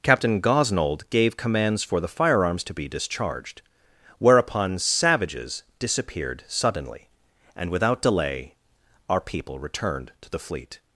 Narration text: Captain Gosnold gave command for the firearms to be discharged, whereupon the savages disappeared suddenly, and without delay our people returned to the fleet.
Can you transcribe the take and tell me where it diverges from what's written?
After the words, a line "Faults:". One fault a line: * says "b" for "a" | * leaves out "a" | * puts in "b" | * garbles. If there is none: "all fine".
Captain Gosnold gave commands for the firearms to be discharged, whereupon savages disappeared suddenly, and without delay our people returned to the fleet.
Faults:
* says "commands" for "command"
* leaves out "the"